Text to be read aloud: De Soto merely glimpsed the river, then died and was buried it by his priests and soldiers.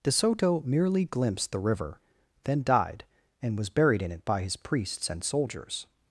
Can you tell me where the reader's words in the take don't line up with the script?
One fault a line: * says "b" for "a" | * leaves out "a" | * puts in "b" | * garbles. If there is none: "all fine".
* puts in "in"